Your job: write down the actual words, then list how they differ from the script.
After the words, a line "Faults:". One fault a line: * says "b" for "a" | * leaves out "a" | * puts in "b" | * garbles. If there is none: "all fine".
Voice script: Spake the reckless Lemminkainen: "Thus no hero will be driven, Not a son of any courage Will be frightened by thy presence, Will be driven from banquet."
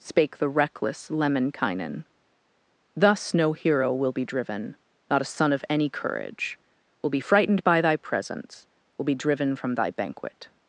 Spake the reckless Lemminkainen: "Thus no hero will be driven, Not a son of any courage Will be frightened by thy presence, Will be driven from thy banquet."
Faults:
* puts in "thy"